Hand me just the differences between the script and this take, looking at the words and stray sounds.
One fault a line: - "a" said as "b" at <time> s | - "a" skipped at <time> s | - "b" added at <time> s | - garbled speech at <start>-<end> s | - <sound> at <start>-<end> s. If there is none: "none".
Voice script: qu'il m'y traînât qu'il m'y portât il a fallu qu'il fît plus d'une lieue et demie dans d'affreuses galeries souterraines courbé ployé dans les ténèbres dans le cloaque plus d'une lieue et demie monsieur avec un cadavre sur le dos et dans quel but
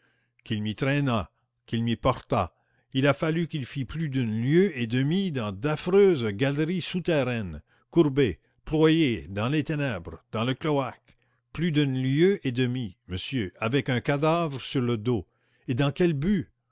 none